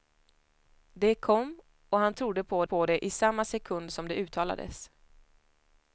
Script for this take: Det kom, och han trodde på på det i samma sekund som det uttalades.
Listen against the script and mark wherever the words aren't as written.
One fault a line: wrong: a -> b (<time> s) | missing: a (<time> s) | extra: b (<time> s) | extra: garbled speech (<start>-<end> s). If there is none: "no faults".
no faults